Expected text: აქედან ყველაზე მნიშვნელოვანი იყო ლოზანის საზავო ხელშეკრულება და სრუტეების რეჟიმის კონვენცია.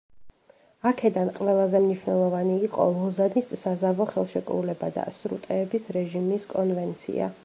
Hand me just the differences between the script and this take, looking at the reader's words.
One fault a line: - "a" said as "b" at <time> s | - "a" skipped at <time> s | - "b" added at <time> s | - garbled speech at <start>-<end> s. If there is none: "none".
none